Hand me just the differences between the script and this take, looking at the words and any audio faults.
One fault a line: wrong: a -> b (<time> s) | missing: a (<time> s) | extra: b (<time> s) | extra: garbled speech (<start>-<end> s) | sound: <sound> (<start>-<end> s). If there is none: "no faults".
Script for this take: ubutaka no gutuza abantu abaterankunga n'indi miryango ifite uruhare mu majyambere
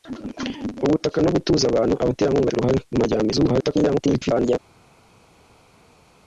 missing: n'indi miryango ifite (2.5 s)
extra: garbled speech (3.3-4.6 s)